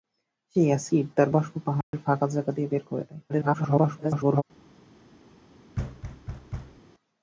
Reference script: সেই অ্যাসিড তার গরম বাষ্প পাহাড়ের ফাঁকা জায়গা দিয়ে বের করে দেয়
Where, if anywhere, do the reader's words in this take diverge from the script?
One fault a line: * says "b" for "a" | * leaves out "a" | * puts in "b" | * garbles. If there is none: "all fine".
* leaves out "গরম"
* garbles